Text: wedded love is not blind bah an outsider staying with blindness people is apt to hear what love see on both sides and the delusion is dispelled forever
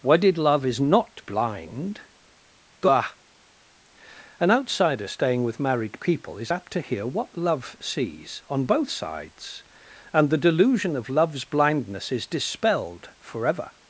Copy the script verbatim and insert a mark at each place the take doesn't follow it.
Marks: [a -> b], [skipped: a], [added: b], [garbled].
wedded love is not blind bah an outsider staying with [blindness -> married] people is apt to hear what love [see -> sees] on both sides and the delusion [added: of love's blindness] is dispelled forever